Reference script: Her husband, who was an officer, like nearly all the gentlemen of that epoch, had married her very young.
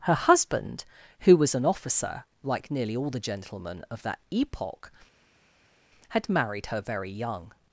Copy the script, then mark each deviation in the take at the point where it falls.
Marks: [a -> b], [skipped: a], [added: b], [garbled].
Her husband, who was an officer, like nearly all the gentlemen of that epoch, had married her very young.